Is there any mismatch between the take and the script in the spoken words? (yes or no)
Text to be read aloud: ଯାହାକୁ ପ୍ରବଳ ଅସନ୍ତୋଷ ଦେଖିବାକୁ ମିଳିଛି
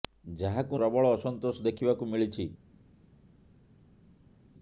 no